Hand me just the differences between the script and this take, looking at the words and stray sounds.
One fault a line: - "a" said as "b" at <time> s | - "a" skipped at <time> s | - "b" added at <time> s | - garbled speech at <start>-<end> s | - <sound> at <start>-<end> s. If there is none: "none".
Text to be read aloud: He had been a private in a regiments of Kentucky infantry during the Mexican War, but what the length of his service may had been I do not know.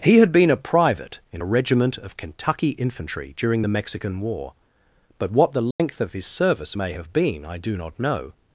- "regiments" said as "regiment" at 1.5 s
- dropout at 5.7-5.8 s
- "had" said as "have" at 6.9 s